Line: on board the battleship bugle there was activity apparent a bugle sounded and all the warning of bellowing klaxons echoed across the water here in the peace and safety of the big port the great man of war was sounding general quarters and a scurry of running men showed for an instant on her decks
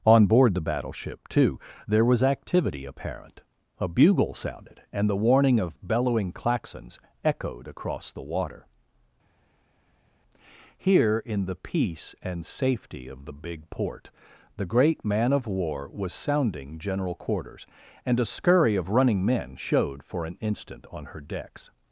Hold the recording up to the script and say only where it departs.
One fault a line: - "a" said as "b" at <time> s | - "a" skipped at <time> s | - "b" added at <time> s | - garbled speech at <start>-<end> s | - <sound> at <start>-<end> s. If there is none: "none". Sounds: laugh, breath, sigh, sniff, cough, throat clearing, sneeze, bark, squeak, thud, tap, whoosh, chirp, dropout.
- "bugle" said as "too" at 1.3 s
- "all" skipped at 5.1 s